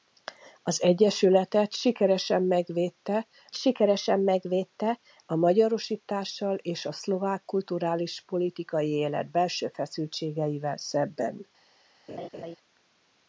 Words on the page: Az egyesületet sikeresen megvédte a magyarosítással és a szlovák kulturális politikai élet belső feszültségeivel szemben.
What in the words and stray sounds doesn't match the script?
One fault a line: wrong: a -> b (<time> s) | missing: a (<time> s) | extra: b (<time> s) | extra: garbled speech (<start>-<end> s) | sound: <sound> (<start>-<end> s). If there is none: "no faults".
extra: sikeresen megvédte (3.5 s)
sound: laugh (12.1-12.6 s)